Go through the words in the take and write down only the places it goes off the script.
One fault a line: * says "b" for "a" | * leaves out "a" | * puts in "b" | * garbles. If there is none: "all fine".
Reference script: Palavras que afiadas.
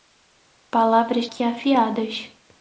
all fine